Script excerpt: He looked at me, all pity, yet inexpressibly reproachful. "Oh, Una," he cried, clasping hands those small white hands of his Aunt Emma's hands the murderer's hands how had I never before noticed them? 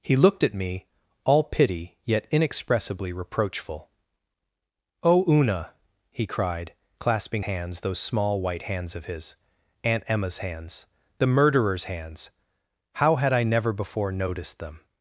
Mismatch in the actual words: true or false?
false